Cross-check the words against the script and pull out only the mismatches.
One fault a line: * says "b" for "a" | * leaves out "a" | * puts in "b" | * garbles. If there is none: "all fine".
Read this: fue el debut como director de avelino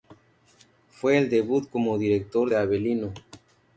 all fine